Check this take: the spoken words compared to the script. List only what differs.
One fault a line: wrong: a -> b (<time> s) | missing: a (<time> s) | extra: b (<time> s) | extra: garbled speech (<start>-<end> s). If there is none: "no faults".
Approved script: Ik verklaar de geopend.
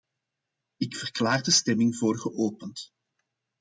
extra: stemming voor (1.5 s)